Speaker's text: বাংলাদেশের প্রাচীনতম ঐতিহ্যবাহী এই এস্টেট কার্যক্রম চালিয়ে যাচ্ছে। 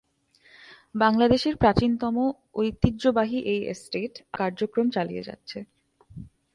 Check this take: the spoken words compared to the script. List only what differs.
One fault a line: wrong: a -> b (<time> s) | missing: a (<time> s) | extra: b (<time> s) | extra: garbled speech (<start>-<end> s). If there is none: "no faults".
no faults